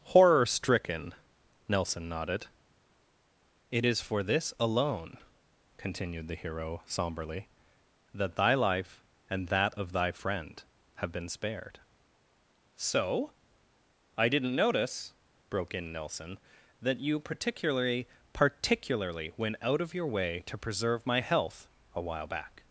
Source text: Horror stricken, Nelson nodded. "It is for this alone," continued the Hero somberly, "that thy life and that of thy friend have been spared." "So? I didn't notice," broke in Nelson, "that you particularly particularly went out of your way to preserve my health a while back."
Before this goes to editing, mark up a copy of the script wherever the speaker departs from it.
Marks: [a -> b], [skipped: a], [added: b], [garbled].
Horror stricken, Nelson nodded. "It is for this alone," continued the Hero somberly, "that thy life and that of thy friend have been spared." "So? I didn't notice," broke in Nelson, "that you particularly particularly went out of your way to preserve my health a while back."